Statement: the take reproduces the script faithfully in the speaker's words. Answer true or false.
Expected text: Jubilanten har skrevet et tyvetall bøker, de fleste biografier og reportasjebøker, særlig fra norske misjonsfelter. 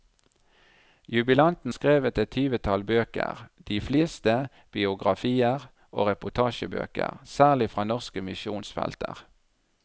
false